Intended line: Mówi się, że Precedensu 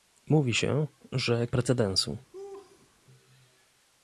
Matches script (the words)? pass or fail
pass